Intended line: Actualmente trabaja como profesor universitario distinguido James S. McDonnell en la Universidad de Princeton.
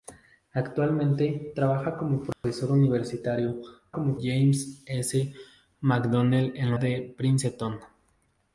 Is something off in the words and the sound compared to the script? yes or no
yes